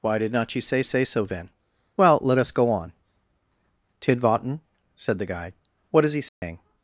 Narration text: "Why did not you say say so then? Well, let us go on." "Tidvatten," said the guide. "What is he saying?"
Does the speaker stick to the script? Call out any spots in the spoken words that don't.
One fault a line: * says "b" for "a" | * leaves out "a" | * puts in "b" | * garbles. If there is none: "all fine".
all fine